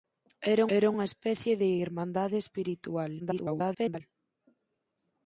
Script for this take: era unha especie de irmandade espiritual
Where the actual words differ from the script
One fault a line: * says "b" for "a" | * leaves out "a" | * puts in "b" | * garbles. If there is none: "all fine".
* puts in "era"
* garbles